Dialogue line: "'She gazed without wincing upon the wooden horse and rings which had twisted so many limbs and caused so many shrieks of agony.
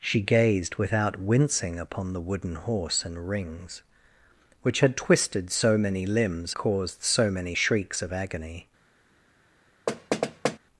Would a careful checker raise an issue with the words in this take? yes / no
yes